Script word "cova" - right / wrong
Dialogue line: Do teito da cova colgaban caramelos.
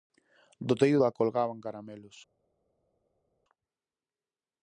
wrong